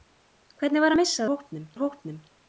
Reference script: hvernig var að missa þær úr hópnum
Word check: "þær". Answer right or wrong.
wrong